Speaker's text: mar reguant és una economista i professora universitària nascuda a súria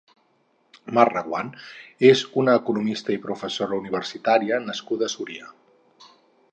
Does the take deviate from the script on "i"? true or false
false